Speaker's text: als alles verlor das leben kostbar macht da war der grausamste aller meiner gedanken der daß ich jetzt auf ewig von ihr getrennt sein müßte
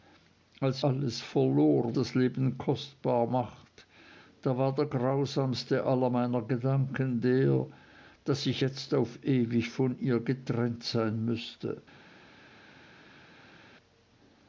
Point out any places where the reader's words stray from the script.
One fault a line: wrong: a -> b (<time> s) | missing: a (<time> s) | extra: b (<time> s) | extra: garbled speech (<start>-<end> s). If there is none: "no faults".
no faults